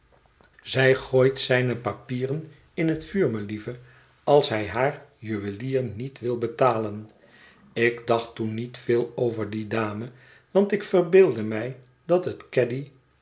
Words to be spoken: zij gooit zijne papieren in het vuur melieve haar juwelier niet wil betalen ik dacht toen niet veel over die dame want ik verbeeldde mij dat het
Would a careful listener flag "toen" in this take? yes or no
no